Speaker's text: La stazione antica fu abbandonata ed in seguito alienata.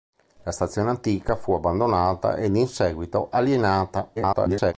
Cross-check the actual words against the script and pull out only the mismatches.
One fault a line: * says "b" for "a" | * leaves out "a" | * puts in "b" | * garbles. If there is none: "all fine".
* garbles